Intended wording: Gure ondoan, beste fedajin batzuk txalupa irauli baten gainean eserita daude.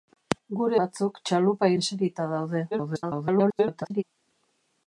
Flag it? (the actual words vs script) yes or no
yes